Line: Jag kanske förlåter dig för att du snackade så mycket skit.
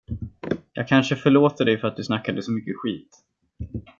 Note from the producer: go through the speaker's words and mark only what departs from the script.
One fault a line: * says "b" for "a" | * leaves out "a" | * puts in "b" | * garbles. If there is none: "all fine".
all fine